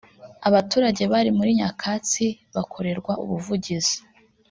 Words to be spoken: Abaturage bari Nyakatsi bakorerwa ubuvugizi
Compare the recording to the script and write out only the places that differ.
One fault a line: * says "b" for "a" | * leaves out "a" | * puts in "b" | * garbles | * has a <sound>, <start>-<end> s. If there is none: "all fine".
* puts in "muri"